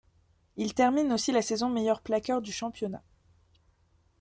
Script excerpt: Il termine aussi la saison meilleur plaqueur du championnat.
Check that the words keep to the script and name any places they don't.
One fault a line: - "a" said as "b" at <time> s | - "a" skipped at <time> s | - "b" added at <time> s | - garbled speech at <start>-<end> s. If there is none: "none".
none